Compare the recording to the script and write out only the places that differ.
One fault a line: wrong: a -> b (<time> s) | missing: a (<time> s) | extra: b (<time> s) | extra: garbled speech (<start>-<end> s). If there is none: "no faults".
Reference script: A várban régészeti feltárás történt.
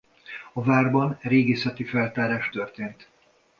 no faults